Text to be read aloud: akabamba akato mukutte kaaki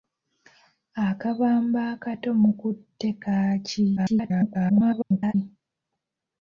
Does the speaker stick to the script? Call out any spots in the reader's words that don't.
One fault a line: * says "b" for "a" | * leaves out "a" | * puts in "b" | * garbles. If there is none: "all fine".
* garbles